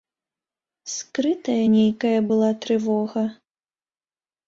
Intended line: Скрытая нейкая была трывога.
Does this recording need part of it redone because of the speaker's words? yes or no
no